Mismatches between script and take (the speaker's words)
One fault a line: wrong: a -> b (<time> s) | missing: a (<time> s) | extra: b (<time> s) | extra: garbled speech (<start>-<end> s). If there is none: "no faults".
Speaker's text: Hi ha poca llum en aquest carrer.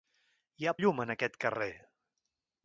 missing: poca (0.7 s)